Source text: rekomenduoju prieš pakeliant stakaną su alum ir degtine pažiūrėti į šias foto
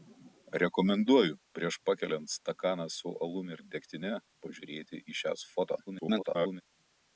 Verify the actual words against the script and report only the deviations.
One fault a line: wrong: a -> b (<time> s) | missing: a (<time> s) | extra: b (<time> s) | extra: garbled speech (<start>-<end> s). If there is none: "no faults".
extra: garbled speech (5.9-6.6 s)